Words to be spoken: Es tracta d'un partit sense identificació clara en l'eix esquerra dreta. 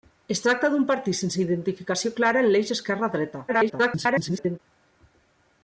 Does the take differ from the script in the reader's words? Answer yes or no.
yes